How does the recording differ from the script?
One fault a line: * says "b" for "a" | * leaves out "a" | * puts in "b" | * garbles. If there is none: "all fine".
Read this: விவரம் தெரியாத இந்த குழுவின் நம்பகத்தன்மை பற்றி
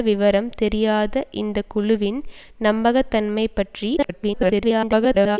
* garbles